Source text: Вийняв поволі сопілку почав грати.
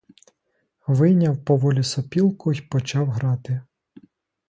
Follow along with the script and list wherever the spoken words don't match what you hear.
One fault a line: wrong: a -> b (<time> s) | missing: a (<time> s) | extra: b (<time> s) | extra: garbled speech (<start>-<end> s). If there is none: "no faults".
extra: й (2.5 s)